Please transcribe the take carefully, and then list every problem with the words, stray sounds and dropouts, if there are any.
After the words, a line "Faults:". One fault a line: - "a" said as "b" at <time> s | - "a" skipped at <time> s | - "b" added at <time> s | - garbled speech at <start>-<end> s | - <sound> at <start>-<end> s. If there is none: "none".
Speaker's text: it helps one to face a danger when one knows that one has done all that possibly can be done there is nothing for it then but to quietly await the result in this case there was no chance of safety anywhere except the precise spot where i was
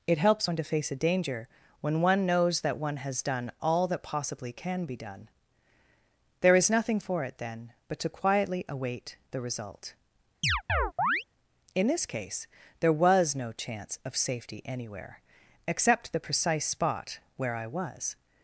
it helps one to face a danger when one knows that one has done all that possibly can be done there is nothing for it then but to quietly await the result in this case there was no chance of safety anywhere except the precise spot where i was
Faults:
- chirp at 10.4-11.2 s